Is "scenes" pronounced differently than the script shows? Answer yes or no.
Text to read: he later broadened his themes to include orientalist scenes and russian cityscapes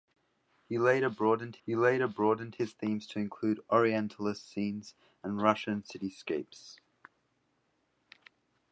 no